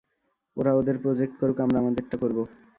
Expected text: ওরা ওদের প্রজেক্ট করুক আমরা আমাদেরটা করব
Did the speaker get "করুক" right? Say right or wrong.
right